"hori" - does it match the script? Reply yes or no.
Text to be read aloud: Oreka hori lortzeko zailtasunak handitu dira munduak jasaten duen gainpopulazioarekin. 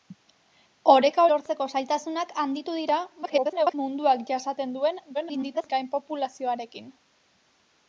no